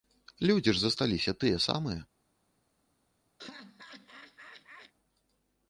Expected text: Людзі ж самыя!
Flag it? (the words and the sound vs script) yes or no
yes